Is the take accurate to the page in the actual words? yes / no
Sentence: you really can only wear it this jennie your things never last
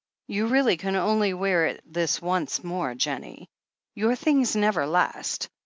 no